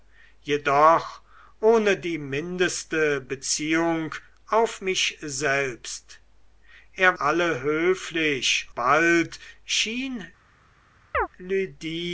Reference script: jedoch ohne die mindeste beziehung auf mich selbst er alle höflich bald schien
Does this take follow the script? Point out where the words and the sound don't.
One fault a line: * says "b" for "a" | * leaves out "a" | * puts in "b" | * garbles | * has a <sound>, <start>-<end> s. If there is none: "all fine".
* has a chirp, 11.1-11.3 s